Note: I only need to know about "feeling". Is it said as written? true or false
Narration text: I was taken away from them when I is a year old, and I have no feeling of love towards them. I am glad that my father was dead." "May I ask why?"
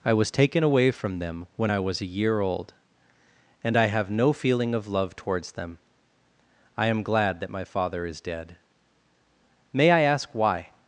true